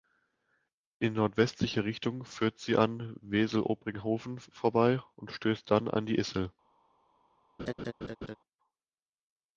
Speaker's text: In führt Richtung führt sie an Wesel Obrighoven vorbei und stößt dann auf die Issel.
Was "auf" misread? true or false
true